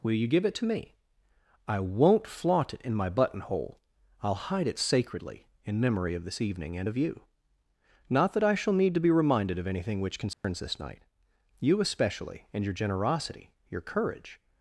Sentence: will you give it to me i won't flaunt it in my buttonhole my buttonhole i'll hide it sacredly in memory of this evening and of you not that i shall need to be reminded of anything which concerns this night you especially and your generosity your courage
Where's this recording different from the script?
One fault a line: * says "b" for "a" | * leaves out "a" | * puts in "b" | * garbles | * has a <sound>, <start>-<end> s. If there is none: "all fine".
* leaves out "my buttonhole"
* has a dropout, 10.3-10.4 s